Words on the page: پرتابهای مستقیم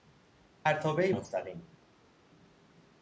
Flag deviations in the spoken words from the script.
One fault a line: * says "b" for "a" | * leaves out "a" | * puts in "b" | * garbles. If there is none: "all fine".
all fine